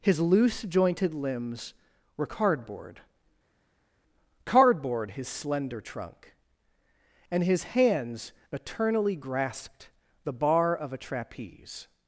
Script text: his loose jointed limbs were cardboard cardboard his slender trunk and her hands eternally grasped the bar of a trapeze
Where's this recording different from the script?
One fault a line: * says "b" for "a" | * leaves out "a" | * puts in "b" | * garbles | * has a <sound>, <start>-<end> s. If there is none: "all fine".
* says "his" for "her"